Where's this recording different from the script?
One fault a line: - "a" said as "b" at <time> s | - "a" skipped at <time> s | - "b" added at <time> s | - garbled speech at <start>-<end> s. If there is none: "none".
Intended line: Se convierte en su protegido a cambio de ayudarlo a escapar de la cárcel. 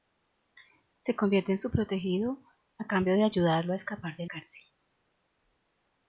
- "la" skipped at 4.2 s